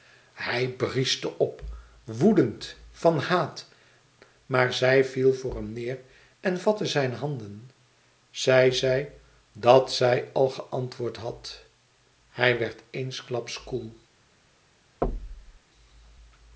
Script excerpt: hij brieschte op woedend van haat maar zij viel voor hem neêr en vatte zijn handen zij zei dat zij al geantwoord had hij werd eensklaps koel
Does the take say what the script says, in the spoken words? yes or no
yes